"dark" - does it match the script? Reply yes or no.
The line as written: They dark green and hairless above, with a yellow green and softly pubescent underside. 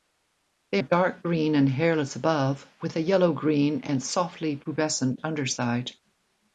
yes